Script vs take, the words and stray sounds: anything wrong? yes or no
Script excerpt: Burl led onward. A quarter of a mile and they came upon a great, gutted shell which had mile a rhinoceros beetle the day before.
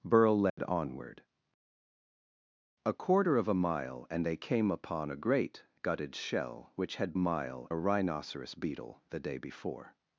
yes